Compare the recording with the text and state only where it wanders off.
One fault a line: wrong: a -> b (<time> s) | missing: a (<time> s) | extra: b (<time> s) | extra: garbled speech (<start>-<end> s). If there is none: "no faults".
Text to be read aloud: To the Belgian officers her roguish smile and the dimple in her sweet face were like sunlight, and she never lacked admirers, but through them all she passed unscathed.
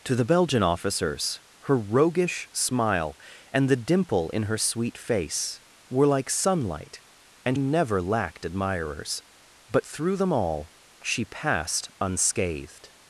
missing: she (7.6 s)